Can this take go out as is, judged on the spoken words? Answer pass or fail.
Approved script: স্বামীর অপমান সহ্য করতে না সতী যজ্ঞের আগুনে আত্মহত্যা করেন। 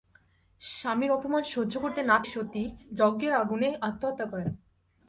pass